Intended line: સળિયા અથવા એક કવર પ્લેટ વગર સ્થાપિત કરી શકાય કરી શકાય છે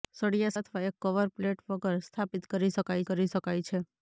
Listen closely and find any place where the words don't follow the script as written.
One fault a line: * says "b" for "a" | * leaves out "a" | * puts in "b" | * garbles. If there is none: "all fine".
all fine